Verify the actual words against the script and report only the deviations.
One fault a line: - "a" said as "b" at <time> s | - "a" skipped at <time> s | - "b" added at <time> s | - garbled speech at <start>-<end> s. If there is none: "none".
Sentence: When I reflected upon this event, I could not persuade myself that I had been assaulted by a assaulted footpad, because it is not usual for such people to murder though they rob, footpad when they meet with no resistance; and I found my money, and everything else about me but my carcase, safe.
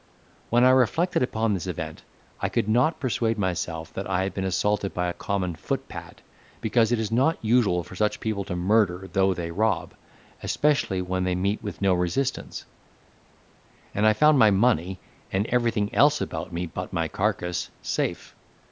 - "assaulted" said as "common" at 5.1 s
- "footpad" said as "especially" at 10.4 s